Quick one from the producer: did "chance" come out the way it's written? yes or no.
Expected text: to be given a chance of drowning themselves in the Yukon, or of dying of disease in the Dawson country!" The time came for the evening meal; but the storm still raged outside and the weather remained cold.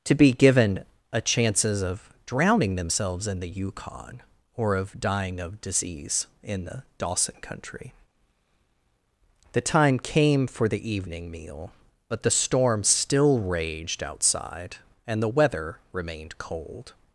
no